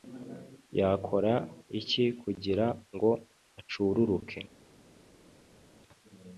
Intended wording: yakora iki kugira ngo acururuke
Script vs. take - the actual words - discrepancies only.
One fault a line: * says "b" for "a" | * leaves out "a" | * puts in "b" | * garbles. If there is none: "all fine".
all fine